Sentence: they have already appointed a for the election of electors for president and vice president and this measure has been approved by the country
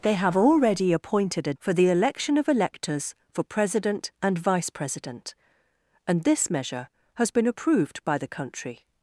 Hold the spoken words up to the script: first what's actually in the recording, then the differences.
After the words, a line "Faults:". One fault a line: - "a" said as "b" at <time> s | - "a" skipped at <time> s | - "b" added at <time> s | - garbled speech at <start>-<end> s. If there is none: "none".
they have already appointed a for the election of electors for president and vice president and this measure has been approved by the country
Faults:
none